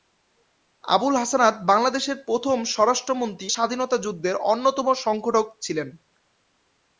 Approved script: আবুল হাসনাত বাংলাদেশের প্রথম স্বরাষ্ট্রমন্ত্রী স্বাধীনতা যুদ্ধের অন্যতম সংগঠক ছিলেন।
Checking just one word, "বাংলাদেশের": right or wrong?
right